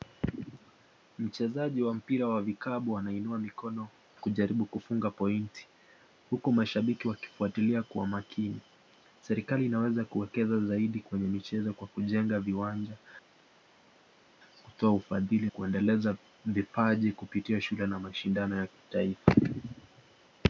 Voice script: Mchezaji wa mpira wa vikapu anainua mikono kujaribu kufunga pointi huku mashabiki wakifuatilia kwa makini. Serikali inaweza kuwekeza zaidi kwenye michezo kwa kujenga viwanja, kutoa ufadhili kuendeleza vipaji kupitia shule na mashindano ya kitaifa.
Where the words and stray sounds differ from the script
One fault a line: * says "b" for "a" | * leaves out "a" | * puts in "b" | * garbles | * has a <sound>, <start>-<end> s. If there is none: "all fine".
all fine